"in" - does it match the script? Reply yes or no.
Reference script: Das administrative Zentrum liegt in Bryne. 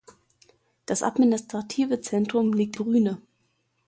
no